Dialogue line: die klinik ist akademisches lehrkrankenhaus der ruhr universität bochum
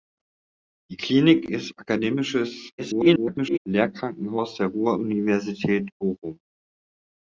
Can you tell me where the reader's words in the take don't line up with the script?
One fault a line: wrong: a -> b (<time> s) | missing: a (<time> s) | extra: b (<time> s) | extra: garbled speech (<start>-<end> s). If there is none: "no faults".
extra: garbled speech (2.8-3.6 s)